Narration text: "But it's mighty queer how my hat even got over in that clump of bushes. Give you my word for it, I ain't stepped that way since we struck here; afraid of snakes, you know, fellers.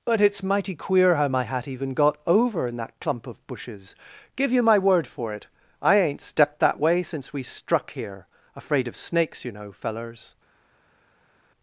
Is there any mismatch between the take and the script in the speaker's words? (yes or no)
no